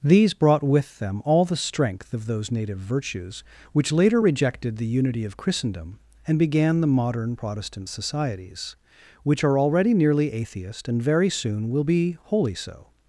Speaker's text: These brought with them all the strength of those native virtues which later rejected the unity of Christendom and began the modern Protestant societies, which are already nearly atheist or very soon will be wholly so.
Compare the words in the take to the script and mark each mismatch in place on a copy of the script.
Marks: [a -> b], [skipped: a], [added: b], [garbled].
These brought with them all the strength of those native virtues which later rejected the unity of Christendom and began the modern Protestant societies, which are already nearly atheist [or -> and] very soon will be wholly so.